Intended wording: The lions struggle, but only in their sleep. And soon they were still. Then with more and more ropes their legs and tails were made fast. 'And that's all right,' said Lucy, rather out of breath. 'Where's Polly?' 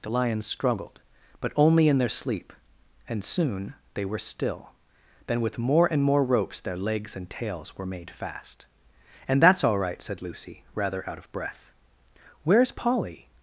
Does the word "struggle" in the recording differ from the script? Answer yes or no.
yes